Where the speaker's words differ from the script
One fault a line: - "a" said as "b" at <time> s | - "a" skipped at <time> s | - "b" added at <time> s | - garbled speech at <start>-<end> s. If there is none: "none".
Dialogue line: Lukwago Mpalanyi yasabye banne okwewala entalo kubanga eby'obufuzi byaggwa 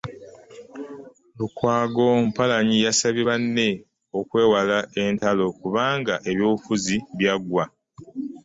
none